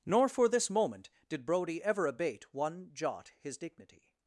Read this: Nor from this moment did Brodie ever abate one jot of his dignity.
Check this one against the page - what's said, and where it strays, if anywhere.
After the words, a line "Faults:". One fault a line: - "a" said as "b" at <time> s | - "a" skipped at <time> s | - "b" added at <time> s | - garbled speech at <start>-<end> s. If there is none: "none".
Nor for this moment did Brodie ever abate one jot his dignity.
Faults:
- "from" said as "for" at 0.3 s
- "of" skipped at 3.3 s